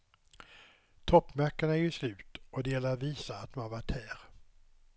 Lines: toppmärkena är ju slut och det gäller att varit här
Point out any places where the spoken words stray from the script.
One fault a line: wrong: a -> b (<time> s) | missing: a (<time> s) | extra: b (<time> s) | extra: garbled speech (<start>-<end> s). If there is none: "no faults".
extra: visa att man (3.0 s)